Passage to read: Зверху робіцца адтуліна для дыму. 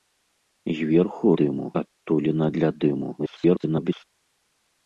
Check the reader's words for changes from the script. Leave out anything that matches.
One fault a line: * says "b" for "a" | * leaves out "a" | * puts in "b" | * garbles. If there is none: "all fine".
* says "дыму" for "робіцца"
* garbles